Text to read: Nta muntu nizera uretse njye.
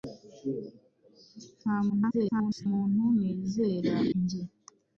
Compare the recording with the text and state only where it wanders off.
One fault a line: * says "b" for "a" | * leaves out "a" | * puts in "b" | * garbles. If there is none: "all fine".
* garbles
* leaves out "uretse"